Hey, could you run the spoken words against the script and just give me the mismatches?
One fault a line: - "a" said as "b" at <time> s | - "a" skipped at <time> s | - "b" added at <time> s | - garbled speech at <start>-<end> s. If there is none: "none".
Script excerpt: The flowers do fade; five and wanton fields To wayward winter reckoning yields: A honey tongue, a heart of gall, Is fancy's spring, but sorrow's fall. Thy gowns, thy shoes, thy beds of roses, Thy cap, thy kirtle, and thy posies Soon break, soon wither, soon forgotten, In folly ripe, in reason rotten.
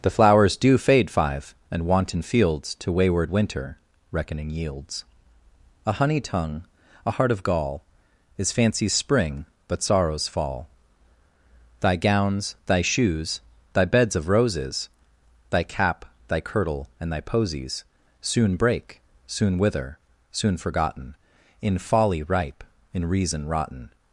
none